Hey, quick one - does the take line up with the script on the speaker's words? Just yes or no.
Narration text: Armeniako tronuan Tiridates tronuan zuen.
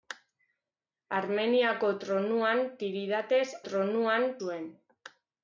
yes